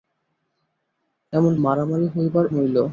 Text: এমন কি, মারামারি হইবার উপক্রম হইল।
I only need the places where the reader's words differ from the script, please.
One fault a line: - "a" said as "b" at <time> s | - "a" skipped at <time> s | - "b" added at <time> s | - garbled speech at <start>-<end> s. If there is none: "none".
- "কি" skipped at 1.5 s
- "উপক্রম" skipped at 2.5 s